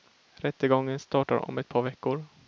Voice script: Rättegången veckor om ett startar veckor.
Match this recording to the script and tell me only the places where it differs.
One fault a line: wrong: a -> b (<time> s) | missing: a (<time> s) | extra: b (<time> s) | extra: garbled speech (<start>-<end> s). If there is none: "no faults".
wrong: veckor -> startar (1.0 s)
wrong: startar -> par (1.7 s)